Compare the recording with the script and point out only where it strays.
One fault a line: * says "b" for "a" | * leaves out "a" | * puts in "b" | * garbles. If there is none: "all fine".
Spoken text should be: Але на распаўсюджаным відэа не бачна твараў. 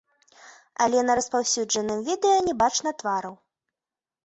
all fine